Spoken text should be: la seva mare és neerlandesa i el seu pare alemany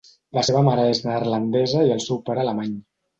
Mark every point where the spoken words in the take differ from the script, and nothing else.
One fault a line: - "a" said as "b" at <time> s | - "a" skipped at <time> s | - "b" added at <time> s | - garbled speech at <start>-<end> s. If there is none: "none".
none